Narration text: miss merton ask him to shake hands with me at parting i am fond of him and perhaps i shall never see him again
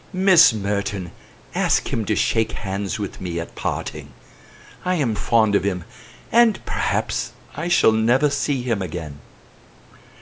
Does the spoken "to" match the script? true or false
true